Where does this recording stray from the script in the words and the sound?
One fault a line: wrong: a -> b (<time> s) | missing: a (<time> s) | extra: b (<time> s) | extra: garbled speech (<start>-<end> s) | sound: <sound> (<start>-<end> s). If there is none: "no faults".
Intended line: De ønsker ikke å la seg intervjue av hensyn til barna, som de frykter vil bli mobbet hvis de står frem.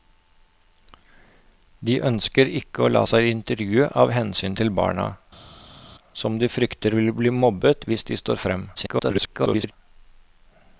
extra: garbled speech (8.7-9.7 s)